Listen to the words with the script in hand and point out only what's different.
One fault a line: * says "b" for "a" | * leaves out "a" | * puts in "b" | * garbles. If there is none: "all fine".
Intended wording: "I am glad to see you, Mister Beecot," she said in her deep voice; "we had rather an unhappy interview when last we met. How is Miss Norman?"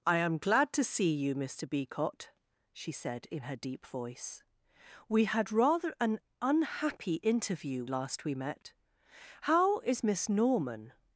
* leaves out "when"